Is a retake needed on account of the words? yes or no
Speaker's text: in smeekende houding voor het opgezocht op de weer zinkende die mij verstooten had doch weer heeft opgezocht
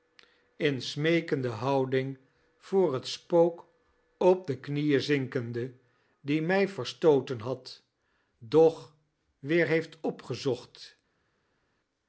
yes